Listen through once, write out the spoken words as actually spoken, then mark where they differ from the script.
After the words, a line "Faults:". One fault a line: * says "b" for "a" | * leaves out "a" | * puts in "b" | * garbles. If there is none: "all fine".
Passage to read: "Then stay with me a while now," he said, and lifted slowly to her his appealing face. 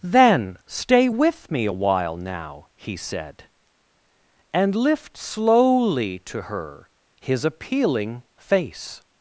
"Then stay with me a while now," he said, and lift slowly to her his appealing face.
Faults:
* says "lift" for "lifted"